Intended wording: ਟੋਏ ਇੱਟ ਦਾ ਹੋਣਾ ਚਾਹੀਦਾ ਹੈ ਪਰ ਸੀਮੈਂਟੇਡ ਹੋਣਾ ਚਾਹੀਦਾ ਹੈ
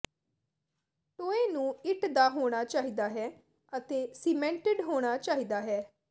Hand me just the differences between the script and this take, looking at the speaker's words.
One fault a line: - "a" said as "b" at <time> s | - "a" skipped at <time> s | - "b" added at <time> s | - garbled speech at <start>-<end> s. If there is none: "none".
- "ਨੂੰ" added at 1.5 s
- "ਪਰ" said as "ਅਤੇ" at 3.7 s